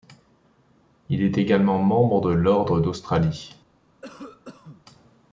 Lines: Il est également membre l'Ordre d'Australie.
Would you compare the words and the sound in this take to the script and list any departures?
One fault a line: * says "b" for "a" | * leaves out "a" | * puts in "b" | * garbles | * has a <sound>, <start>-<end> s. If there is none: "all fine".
* puts in "de"
* has a cough, 4.0-4.8 s